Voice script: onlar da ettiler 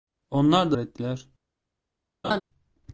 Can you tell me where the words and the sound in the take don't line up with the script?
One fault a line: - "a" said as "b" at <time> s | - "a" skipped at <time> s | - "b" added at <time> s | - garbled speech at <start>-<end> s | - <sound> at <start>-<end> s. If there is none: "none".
- laugh at 2.2-2.4 s